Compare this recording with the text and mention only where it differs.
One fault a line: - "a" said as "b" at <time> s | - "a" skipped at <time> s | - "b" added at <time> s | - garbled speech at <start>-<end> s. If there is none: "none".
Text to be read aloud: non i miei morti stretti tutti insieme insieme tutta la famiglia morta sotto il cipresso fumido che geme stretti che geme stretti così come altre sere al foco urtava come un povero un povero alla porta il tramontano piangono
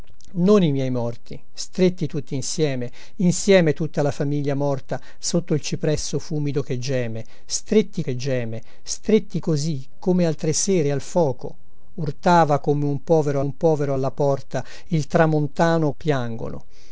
none